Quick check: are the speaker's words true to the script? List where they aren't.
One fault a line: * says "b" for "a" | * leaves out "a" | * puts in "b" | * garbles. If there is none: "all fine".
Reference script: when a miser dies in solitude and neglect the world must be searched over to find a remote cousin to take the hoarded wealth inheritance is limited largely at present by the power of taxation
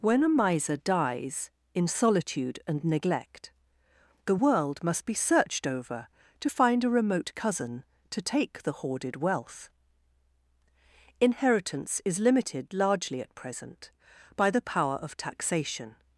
all fine